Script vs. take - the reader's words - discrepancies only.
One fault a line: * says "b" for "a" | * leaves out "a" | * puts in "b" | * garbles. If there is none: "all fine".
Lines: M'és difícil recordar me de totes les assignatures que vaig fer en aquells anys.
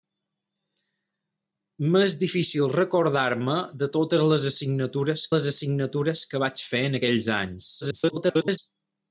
* puts in "les assignatures"
* garbles